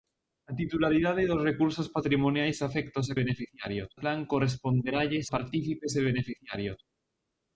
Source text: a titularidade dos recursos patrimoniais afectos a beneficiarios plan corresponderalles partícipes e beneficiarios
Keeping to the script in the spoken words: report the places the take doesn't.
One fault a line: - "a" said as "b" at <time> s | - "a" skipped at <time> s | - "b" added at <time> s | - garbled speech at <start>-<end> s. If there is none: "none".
none